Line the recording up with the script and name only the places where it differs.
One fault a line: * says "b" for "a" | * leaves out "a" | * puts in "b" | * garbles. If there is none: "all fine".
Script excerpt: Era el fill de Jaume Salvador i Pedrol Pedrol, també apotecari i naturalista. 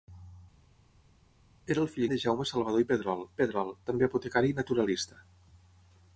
all fine